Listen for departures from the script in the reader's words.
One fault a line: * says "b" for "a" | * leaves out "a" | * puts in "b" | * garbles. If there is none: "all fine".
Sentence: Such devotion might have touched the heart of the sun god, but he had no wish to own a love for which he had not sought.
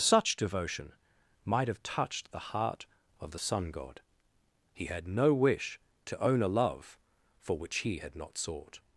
* leaves out "but"